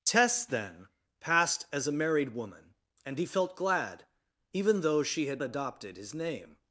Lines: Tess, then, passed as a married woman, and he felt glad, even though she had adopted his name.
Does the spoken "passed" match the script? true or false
true